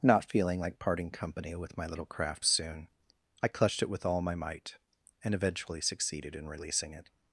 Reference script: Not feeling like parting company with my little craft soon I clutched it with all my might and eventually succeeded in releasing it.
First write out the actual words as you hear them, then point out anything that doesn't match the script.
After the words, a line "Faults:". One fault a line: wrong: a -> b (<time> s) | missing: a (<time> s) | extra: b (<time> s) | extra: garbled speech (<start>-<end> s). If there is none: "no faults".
Not feeling like parting company with my little craft soon I clutched it with all my might and eventually succeeded in releasing it.
Faults:
no faults